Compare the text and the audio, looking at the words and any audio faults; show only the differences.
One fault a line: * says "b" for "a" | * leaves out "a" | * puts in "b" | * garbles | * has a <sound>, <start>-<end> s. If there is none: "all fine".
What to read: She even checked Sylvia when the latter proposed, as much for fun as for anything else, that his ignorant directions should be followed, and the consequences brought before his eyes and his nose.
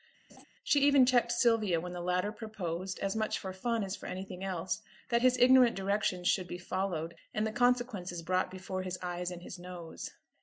* has a laugh, 0.3-0.4 s